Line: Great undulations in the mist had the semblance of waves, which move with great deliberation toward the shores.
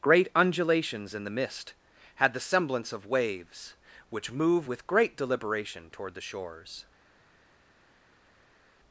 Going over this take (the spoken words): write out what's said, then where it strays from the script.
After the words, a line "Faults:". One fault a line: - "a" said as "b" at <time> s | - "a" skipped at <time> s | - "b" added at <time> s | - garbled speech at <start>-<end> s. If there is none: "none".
Great undulations in the mist had the semblance of waves, which move with great deliberation toward the shores.
Faults:
none